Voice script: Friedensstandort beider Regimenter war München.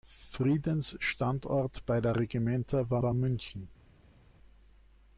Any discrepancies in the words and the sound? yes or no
yes